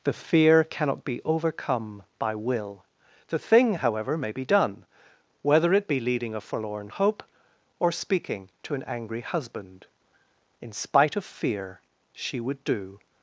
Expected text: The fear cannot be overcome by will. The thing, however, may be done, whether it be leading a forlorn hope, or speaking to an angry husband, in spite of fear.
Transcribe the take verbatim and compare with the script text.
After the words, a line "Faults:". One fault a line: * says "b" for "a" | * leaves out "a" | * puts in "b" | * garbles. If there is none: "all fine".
The fear cannot be overcome by will. The thing, however, may be done, whether it be leading a forlorn hope, or speaking to an angry husband, in spite of fear. She would do
Faults:
* puts in "She would do"